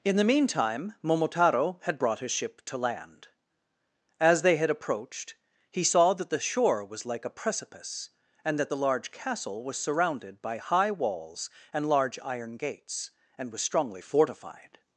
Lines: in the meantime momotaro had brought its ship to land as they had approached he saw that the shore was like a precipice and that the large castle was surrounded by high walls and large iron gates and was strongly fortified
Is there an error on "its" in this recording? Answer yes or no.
yes